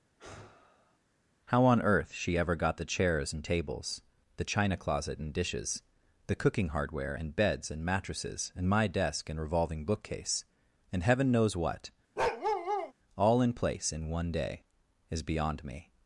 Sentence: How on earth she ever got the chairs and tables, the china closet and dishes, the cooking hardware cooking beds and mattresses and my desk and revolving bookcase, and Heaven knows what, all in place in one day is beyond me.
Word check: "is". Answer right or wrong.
right